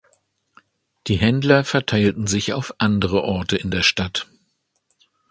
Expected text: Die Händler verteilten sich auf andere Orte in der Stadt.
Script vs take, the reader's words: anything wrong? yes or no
no